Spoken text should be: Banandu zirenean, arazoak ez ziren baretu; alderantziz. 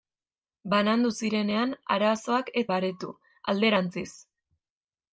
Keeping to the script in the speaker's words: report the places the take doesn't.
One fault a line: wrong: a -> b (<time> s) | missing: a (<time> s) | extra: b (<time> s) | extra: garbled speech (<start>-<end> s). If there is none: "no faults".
missing: ziren (2.6 s)